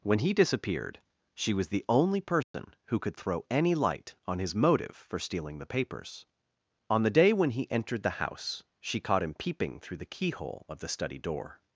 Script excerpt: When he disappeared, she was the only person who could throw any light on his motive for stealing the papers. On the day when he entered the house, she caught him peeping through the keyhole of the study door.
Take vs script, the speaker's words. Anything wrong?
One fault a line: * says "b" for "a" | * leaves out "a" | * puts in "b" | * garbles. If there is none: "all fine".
all fine